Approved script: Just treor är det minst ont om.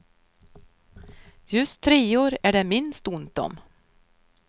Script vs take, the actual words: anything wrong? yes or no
no